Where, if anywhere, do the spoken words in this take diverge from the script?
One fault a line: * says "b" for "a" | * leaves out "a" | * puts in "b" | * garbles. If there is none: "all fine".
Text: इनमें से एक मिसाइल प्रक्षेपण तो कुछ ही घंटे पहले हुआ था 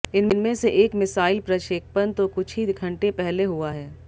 * says "है" for "था"